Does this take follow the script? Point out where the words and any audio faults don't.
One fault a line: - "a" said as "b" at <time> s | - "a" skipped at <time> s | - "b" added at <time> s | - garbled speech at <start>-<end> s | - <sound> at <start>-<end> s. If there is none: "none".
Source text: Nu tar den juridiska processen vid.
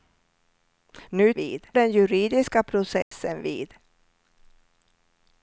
- "tar" said as "vid" at 1.4 s
- dropout at 3.0-3.1 s